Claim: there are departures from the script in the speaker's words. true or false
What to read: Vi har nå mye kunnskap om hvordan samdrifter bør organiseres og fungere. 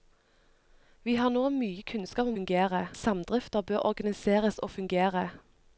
true